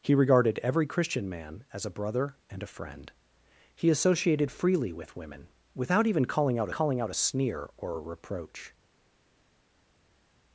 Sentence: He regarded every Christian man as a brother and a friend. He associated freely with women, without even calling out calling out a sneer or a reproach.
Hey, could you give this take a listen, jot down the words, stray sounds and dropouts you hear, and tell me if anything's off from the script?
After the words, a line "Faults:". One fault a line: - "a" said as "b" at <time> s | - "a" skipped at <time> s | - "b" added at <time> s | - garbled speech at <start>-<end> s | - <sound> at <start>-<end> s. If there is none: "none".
He regarded every Christian man as a brother and a friend. He associated freely with women, without even calling out calling out a sneer or a reproach.
Faults:
none